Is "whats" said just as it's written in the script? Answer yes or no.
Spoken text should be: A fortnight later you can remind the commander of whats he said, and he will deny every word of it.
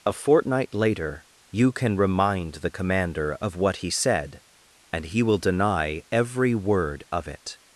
no